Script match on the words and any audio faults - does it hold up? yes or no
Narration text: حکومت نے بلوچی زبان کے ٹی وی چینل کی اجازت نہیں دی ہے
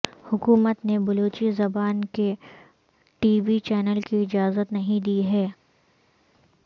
yes